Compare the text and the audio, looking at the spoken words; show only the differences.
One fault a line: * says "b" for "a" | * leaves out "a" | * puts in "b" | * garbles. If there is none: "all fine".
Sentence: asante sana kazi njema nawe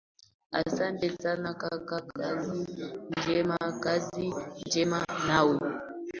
* puts in "kaka kazi njema"